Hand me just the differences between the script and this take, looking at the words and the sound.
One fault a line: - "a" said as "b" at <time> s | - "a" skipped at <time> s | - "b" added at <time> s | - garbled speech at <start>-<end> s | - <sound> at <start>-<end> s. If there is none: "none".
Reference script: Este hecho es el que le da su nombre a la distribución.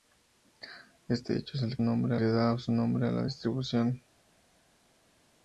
- "que" said as "nombre" at 1.8 s